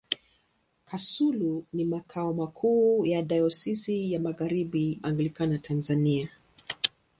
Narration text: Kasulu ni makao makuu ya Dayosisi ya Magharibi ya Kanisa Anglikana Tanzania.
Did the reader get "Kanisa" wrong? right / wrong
wrong